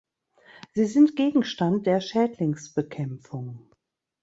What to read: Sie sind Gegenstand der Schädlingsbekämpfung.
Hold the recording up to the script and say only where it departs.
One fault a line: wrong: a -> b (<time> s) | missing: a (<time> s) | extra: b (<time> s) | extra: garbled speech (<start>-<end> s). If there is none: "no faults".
no faults